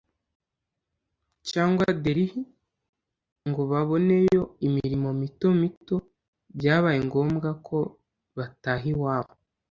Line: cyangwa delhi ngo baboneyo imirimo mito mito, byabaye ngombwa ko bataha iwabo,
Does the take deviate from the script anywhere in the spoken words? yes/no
no